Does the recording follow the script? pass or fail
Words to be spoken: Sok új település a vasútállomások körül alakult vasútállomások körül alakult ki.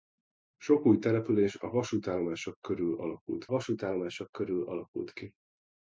pass